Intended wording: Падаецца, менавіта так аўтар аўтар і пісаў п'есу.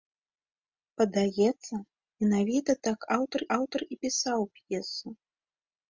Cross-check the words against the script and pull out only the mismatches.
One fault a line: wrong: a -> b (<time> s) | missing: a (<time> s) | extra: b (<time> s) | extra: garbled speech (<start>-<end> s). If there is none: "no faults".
no faults